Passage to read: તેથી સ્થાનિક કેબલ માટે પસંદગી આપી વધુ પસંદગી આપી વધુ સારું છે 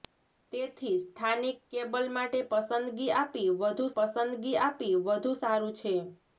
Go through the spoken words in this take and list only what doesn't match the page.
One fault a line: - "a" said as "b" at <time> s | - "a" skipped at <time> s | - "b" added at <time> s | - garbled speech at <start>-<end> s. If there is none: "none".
none